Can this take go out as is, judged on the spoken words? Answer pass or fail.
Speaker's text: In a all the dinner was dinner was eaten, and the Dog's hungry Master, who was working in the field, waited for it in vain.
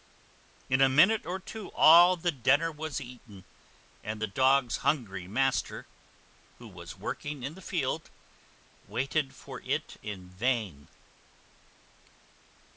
fail